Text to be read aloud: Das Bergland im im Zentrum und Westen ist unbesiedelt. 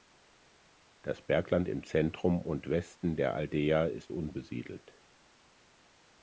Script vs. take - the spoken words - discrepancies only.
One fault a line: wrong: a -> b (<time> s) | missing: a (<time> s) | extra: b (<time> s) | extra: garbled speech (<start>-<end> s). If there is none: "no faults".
missing: im (1.8 s)
extra: der Aldeia (3.2 s)